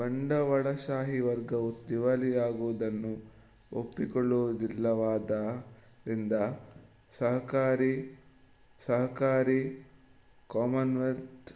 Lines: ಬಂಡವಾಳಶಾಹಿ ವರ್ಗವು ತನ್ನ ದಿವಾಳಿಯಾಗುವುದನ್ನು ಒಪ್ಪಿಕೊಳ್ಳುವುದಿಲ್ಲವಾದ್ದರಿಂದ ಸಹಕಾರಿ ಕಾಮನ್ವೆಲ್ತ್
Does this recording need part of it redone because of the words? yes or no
yes